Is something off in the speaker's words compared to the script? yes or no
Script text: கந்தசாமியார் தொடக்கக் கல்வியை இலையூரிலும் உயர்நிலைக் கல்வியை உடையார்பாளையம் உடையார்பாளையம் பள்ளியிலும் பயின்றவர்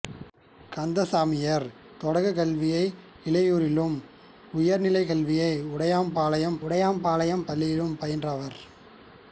no